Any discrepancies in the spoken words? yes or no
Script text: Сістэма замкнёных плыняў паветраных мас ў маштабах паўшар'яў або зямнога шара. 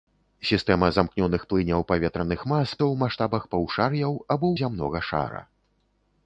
no